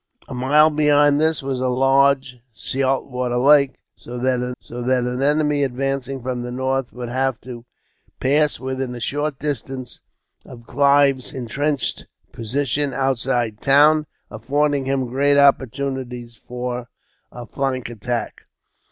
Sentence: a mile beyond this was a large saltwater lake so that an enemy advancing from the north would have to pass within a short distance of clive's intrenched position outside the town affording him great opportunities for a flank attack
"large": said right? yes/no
yes